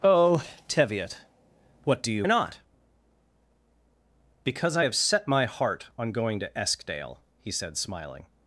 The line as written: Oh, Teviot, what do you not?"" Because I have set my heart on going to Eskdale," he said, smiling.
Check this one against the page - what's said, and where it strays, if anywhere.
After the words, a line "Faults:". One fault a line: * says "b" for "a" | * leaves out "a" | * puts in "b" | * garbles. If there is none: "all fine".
Oh, Teviot, what do you not?"" Because I have set my heart on going to Eskdale," he said, smiling.
Faults:
all fine